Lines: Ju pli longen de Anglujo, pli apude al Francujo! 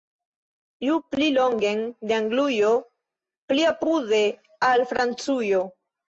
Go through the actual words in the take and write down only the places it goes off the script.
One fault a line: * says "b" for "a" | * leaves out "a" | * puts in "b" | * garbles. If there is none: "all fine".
all fine